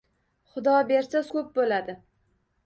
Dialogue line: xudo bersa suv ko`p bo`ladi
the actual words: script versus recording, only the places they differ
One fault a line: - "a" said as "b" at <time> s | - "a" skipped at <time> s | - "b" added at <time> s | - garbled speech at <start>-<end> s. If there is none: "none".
- "suv" skipped at 1.2 s